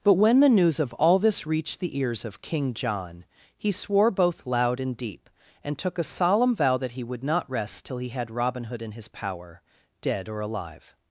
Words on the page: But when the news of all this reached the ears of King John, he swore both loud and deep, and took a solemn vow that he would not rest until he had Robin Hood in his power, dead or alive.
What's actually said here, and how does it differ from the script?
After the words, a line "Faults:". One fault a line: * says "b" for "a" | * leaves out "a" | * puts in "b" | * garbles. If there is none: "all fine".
But when the news of all this reached the ears of King John, he swore both loud and deep, and took a solemn vow that he would not rest till he had Robin Hood in his power, dead or alive.
Faults:
* says "till" for "until"